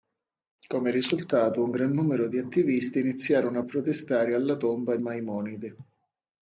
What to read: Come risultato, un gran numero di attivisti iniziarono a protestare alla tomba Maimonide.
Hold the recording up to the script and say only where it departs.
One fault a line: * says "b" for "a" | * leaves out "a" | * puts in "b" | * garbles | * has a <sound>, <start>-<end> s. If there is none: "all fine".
all fine